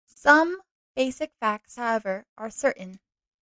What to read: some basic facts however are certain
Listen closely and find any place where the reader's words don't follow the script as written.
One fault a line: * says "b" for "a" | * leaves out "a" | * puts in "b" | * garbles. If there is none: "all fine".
all fine